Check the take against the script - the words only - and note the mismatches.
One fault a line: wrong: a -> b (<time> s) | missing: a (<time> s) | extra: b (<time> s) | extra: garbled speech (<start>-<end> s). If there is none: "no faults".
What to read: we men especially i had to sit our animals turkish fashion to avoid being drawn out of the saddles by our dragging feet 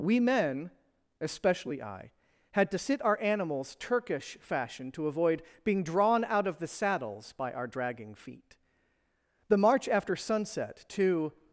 extra: the march after sunset to (9.5 s)